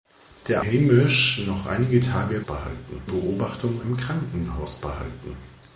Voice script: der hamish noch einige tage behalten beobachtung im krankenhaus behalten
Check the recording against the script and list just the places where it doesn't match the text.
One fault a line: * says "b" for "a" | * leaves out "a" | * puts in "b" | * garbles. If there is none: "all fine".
all fine